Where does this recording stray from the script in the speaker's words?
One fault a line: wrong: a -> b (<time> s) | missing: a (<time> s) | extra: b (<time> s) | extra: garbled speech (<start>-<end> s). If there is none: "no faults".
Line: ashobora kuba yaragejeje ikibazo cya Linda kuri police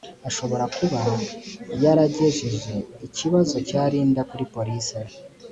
no faults